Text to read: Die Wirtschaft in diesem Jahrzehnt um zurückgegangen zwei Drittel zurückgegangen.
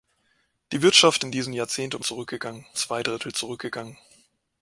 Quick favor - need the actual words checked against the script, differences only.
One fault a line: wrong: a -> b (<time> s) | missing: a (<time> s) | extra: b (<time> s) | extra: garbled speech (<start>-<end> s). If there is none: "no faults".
no faults